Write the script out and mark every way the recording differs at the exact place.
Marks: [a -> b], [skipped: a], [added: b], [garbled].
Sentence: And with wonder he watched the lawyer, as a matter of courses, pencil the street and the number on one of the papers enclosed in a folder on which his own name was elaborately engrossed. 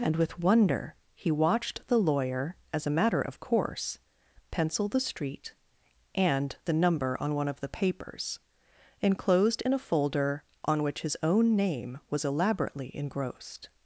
And with wonder he watched the lawyer, as a matter of [courses, -> course] pencil the street and the number on one of the papers enclosed in a folder on which his own name was elaborately engrossed.